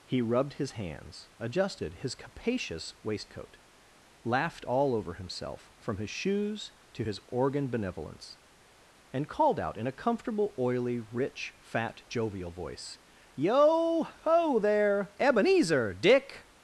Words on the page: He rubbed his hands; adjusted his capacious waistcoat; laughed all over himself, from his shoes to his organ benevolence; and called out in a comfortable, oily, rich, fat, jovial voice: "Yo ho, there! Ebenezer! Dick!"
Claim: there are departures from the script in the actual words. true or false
false